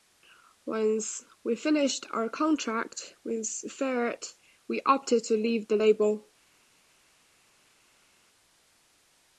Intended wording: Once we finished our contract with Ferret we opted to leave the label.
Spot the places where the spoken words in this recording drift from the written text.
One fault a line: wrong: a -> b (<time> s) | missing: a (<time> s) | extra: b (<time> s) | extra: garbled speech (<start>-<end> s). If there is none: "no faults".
no faults